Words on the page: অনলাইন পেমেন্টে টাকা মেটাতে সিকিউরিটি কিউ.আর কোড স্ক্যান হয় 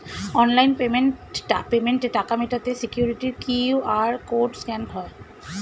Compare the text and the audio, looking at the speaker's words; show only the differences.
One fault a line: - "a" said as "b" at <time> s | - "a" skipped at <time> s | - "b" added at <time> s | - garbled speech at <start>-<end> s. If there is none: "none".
none